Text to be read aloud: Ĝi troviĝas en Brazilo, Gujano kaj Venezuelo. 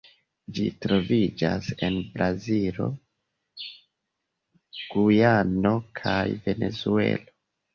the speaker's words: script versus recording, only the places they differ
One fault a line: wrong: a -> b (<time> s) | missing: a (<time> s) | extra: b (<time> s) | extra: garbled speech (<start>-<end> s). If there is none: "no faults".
no faults